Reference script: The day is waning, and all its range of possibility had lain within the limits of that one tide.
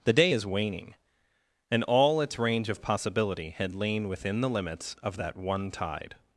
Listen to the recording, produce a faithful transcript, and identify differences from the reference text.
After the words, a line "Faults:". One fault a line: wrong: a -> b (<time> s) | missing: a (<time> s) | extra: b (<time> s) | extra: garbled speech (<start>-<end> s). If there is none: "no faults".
The day is waning, and all its range of possibility had lain within the limits of that one tide.
Faults:
no faults